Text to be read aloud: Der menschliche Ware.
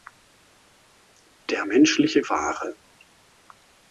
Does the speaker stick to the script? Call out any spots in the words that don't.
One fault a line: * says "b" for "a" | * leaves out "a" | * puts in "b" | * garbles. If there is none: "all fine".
all fine